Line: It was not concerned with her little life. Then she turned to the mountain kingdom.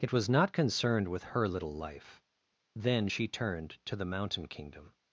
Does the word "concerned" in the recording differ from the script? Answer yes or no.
no